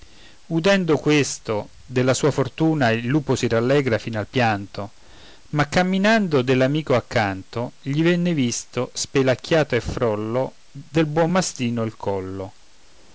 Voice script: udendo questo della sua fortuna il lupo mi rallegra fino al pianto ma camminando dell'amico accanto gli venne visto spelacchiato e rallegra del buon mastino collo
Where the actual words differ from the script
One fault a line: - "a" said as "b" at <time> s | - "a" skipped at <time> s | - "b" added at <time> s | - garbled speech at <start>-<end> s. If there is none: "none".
- "mi" said as "si" at 3.3 s
- "rallegra" said as "frollo" at 9.8 s
- "il" added at 11.8 s